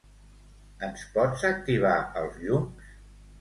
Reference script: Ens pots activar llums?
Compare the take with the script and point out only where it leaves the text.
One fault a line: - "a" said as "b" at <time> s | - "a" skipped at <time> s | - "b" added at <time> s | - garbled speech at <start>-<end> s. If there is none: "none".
- "els" added at 2.2 s